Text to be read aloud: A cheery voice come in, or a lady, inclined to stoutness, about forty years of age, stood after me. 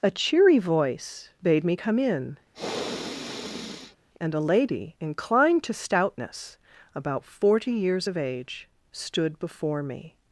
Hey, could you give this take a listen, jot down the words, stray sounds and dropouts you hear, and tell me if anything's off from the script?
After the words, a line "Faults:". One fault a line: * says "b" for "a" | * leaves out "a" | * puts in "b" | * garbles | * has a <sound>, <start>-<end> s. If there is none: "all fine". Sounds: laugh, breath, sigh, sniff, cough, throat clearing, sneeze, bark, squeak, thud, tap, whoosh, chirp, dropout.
A cheery voice bade me come in, and a lady, inclined to stoutness, about forty years of age, stood before me.
Faults:
* puts in "bade me"
* has a sniff, 2.5-4.0 s
* says "and" for "or"
* says "before" for "after"